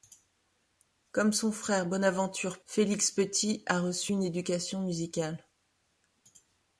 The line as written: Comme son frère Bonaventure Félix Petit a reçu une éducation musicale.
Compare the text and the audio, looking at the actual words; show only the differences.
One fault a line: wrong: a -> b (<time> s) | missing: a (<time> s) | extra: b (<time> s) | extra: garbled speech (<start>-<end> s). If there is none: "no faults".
no faults